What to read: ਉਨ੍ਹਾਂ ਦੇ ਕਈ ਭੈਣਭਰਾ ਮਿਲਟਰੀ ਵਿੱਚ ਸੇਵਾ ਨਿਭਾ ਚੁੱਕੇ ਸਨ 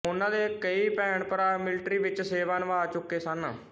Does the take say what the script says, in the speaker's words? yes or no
yes